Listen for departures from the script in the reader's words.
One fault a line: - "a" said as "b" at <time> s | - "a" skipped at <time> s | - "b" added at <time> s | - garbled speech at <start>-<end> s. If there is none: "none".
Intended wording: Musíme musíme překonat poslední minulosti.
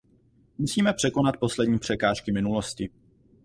- "musíme" skipped at 0.9 s
- "překážky" added at 1.8 s